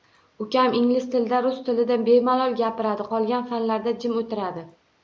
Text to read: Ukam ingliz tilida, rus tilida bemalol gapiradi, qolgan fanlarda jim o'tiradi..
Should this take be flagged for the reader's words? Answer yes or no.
no